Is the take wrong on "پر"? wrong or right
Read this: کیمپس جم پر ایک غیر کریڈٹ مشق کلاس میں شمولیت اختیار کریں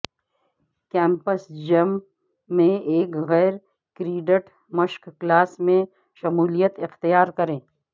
wrong